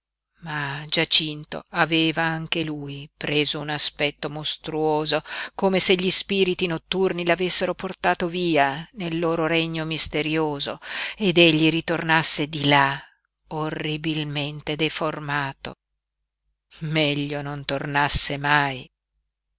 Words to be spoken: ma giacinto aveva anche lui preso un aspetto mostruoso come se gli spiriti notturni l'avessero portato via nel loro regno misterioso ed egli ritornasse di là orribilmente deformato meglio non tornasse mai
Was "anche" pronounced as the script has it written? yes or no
yes